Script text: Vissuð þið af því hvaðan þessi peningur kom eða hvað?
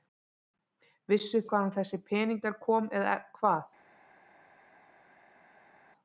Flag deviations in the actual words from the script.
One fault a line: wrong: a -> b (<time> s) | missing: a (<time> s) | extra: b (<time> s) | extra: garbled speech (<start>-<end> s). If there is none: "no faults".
missing: þið af því (1.4 s)